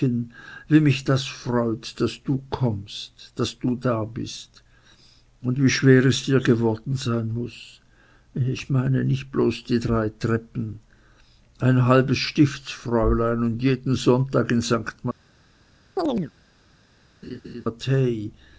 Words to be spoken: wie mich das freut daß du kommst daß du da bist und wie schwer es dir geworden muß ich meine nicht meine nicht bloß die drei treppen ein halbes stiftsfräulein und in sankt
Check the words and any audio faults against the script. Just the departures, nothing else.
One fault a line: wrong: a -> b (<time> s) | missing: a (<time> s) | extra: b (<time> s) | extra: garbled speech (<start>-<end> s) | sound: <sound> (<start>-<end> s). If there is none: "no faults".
extra: sein (7.0 s)
missing: meine nicht (9.3 s)
extra: jeden sonntag (13.6 s)
sound: chirp (16.0-16.3 s)
sound: laugh (17.2-17.7 s)